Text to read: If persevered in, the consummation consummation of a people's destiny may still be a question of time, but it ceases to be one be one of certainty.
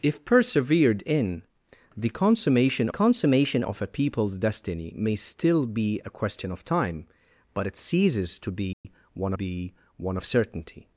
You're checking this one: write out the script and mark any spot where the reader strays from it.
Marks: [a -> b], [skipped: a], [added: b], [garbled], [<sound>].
If persevered in, the consummation consummation of a people's destiny may still be a question of time, but it ceases to be [dropout] one be one of certainty.